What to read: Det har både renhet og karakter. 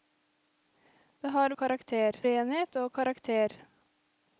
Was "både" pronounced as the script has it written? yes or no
no